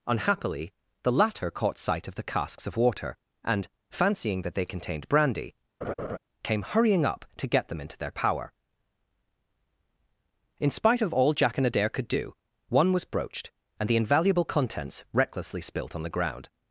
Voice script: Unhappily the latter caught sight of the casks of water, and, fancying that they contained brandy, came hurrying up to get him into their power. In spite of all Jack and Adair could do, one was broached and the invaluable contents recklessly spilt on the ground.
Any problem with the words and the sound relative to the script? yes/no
yes